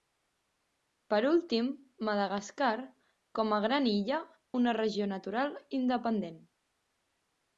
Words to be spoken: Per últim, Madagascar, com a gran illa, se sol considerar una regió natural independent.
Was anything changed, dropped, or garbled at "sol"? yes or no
yes